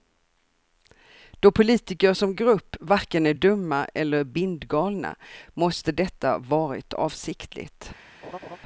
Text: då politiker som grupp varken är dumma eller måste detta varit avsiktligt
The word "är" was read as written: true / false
true